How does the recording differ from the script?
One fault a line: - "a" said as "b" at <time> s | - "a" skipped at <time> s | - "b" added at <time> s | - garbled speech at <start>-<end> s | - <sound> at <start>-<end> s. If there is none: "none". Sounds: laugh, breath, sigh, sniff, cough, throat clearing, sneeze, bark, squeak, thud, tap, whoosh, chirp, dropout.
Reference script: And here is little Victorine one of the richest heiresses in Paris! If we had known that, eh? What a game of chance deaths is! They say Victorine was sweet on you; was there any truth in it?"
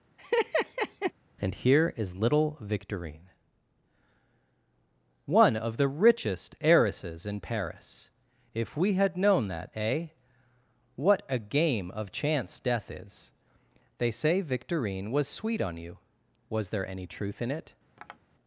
- laugh at 0.2-1.1 s
- "deaths" said as "death" at 12.6 s
- tap at 18.0-18.2 s